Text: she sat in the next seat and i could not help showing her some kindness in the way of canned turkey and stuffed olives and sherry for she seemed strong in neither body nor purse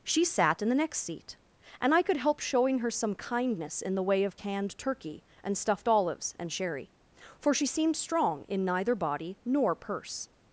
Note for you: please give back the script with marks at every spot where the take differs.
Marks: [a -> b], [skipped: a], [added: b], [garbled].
she sat in the next seat and i could [skipped: not] help showing her some kindness in the way of canned turkey and stuffed olives and sherry for she seemed strong in neither body nor purse